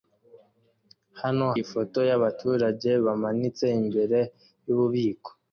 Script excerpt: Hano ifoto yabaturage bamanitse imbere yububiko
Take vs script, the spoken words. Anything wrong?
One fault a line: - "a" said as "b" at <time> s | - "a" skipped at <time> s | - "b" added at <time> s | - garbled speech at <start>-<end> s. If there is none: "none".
none